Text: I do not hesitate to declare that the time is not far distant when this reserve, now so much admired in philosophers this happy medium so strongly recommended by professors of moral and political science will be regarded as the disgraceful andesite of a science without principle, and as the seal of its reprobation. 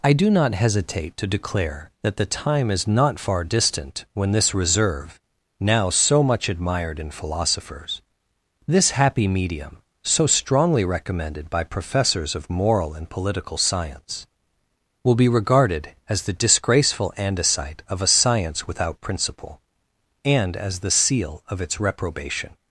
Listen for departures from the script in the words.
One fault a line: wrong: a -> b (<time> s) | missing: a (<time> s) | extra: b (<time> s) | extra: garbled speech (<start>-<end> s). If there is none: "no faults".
no faults